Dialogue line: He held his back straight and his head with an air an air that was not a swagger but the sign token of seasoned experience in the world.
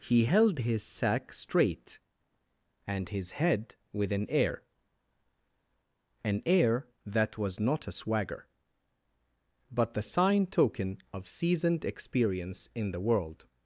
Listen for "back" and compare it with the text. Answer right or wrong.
wrong